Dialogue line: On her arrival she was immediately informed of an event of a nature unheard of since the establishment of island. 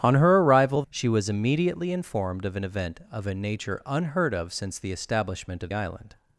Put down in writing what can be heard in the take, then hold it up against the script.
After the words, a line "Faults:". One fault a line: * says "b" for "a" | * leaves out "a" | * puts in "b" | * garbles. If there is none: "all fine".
On her arrival she was immediately informed of an event of a nature unheard of since the establishment of island.
Faults:
all fine